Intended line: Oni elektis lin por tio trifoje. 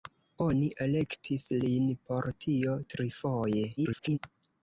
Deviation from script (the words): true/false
true